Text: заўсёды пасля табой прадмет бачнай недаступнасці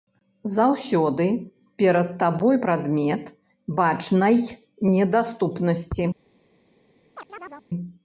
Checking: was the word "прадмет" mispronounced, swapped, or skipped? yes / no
no